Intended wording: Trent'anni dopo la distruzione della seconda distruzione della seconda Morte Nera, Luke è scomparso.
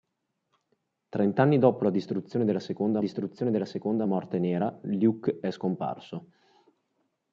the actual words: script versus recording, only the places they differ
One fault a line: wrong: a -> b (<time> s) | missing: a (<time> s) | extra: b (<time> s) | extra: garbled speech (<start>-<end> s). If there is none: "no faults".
no faults